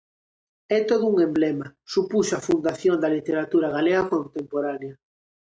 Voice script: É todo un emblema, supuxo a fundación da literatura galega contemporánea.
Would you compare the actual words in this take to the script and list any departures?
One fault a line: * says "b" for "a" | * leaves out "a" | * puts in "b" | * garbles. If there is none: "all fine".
all fine